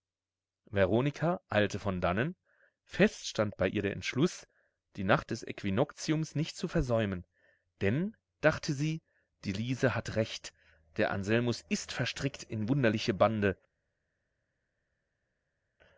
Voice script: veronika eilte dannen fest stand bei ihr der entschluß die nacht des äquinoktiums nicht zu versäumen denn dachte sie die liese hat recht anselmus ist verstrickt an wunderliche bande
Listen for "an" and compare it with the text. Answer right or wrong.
wrong